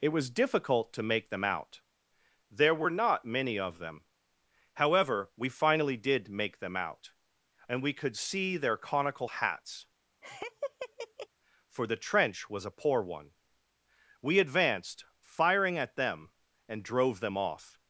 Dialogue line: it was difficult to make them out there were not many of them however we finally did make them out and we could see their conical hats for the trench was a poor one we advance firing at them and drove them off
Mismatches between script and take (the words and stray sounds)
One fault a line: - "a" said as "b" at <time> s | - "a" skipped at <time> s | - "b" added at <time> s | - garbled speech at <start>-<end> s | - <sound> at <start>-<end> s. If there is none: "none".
- laugh at 10.2-11.3 s
- "advance" said as "advanced" at 14.4 s